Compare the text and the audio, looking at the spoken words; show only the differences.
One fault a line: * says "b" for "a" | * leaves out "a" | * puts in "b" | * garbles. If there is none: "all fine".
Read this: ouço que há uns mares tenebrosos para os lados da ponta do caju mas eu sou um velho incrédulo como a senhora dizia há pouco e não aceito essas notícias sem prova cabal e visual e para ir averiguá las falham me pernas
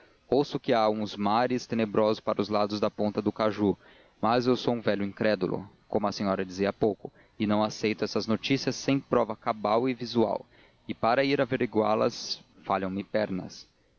all fine